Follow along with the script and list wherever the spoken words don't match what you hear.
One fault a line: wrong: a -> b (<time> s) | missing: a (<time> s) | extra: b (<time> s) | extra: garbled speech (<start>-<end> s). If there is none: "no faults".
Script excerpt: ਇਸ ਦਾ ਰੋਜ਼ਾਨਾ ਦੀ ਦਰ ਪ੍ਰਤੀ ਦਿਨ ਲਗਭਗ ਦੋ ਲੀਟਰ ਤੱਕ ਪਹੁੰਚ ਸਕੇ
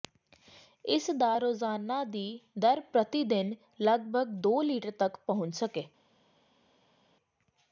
no faults